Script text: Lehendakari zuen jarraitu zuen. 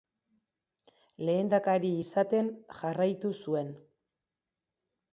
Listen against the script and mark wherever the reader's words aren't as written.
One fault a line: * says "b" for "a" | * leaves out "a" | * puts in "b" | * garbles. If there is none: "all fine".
* says "izaten" for "zuen"